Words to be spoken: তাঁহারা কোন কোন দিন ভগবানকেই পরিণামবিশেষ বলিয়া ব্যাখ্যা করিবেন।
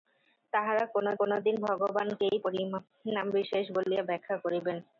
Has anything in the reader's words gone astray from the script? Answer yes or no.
no